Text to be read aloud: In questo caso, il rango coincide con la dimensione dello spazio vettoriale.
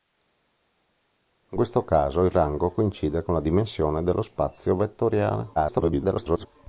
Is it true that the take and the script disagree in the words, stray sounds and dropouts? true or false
true